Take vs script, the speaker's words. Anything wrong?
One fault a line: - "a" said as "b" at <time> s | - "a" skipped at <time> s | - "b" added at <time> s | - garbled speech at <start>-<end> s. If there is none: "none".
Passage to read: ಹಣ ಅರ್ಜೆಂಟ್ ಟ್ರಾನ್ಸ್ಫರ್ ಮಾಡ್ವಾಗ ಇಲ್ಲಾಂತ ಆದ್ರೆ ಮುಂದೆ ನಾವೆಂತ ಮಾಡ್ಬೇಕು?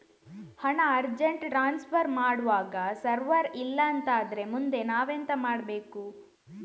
- "ಸರ್ವರ್" added at 2.9 s